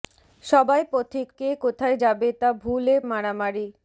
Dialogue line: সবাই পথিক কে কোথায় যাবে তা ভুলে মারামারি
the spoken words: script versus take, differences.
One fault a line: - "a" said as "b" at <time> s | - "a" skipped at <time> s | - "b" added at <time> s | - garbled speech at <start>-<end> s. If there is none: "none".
none